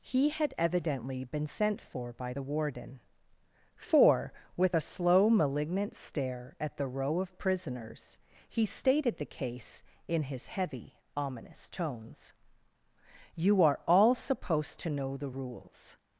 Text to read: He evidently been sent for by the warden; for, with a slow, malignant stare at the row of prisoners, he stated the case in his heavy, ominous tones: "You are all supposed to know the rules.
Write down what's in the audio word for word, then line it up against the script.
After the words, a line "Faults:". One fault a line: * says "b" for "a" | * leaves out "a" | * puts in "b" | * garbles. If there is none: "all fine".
He had evidently been sent for by the warden; for, with a slow, malignant stare at the row of prisoners, he stated the case in his heavy, ominous tones: "You are all supposed to know the rules.
Faults:
* puts in "had"